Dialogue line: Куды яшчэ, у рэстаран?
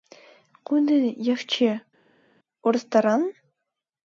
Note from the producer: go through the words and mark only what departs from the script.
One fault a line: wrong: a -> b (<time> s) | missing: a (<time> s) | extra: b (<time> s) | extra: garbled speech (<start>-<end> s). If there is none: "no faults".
no faults